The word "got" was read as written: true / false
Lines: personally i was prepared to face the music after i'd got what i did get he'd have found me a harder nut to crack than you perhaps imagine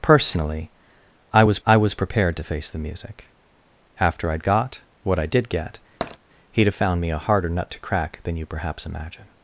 true